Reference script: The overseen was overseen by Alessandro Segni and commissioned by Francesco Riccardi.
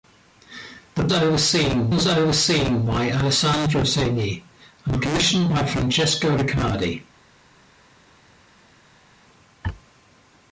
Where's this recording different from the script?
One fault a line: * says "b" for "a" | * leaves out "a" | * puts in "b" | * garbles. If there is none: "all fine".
all fine